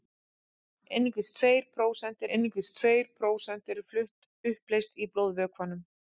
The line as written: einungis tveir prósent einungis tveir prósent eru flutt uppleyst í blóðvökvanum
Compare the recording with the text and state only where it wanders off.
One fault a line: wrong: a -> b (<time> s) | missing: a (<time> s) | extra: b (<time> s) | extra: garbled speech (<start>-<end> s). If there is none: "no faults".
no faults